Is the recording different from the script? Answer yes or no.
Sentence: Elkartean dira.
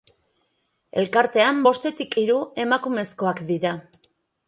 yes